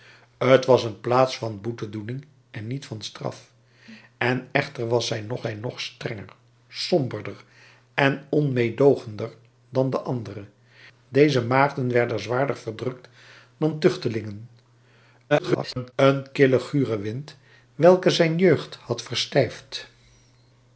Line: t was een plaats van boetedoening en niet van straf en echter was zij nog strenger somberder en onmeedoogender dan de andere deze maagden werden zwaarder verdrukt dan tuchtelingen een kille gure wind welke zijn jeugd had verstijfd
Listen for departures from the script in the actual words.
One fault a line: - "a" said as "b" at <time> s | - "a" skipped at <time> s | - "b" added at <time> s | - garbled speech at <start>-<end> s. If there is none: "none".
- "zij nog" added at 5.4 s
- garbled speech at 15.3-15.9 s